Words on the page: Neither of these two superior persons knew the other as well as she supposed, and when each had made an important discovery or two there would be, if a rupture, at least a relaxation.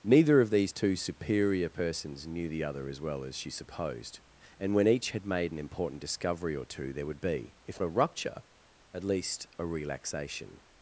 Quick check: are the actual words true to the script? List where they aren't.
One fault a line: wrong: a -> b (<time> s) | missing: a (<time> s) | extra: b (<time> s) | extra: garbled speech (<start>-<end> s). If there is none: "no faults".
no faults